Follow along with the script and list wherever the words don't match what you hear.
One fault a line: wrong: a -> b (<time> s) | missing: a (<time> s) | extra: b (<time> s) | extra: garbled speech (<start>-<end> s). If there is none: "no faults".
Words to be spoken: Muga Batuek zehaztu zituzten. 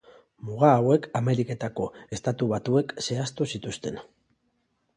extra: hauek Ameriketako Estatu (0.8 s)